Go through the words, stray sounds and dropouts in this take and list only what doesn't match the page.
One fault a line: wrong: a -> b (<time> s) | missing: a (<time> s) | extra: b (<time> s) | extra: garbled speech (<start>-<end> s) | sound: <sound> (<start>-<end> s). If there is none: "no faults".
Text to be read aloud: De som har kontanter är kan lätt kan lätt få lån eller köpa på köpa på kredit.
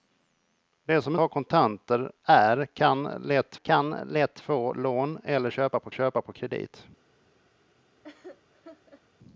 sound: laugh (8.0-9.0 s)